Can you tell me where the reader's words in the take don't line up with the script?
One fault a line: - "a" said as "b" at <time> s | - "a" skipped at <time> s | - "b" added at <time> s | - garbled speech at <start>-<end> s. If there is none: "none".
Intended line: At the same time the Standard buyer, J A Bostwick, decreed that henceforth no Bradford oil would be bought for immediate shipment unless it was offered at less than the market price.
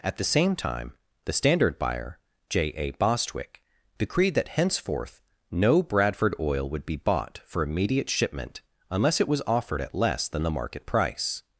none